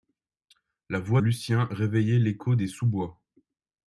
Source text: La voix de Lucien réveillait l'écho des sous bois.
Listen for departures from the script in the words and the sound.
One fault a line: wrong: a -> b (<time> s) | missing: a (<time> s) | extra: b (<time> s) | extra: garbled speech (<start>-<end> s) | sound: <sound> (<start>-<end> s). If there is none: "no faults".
missing: de (1.2 s)